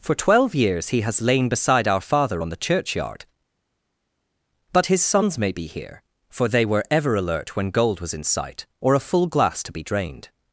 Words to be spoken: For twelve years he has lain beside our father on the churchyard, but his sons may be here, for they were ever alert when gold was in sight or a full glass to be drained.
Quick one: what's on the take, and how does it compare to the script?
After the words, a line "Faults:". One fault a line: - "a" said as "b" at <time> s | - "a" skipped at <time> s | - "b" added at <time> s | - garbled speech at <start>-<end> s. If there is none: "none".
For twelve years he has lain beside our father on the churchyard, but his sons may be here, for they were ever alert when gold was in sight or a full glass to be drained.
Faults:
none